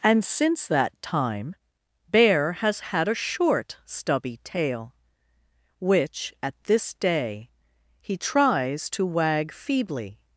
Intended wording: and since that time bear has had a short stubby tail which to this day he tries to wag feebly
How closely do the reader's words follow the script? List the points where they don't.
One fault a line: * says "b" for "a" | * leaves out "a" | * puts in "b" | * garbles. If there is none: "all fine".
* says "at" for "to"